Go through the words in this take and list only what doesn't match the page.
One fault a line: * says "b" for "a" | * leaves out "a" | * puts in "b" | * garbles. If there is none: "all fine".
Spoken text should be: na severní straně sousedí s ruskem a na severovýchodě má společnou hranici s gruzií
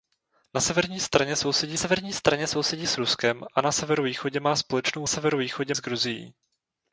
* puts in "severní straně sousedí"
* says "severovýchodě" for "hranici"